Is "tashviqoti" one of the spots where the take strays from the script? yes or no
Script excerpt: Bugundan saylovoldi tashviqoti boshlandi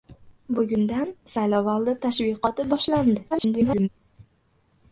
no